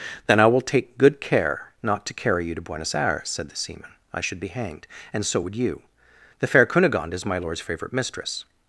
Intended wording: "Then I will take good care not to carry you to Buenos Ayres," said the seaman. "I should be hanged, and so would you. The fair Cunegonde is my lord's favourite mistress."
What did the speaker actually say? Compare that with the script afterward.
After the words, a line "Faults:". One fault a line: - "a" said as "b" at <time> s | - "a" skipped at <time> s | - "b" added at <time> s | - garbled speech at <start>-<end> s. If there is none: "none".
"Then I will take good care not to carry you to Buenos Ayres," said the seaman. "I should be hanged, and so would you. The fair Cunegonde is my lord's favourite mistress."
Faults:
none